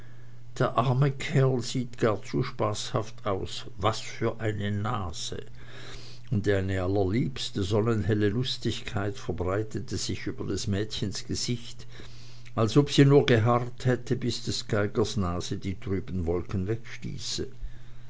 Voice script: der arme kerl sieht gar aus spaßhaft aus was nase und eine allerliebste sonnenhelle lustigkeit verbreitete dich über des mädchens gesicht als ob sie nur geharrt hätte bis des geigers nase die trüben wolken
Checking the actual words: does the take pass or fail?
fail